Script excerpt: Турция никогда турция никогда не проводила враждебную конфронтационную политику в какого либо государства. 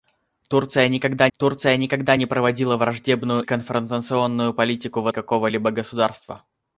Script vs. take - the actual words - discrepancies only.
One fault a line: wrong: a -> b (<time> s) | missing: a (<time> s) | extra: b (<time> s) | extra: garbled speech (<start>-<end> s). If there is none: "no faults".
no faults